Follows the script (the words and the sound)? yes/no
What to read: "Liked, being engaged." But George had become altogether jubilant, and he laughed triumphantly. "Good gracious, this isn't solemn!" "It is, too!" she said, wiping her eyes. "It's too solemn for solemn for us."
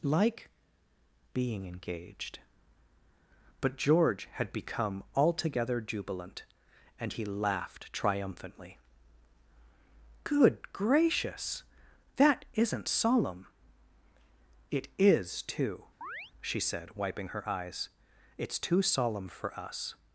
no